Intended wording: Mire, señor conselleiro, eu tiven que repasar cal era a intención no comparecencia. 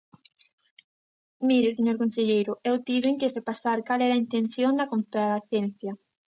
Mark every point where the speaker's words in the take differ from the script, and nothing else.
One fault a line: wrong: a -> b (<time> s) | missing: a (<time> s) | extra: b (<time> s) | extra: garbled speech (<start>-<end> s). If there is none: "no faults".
wrong: no -> da (4.7 s)